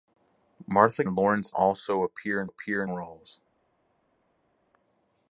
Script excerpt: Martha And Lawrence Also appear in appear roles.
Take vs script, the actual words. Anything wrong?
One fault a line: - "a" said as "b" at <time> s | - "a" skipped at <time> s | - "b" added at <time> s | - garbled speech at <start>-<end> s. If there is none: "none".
none